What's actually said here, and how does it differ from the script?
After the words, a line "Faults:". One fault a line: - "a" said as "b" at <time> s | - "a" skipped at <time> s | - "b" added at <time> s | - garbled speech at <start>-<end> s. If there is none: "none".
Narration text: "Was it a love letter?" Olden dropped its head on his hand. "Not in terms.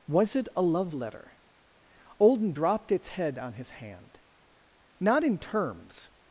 "Was it a love letter?" Olden dropped its head on his hand. "Not in terms.
Faults:
none